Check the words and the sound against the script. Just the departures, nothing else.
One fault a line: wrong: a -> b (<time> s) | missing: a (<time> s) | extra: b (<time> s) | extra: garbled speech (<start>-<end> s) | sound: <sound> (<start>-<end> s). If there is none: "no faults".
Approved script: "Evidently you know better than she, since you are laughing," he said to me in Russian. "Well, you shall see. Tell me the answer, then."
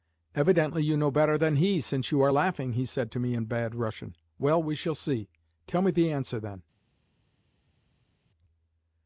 wrong: she -> he (1.6 s)
extra: bad (3.5 s)
wrong: you -> we (4.6 s)